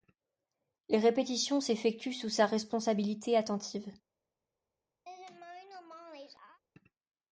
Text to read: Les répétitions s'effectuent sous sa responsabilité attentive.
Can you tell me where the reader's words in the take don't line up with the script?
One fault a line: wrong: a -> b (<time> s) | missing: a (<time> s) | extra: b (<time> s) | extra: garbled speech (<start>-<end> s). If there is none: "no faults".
no faults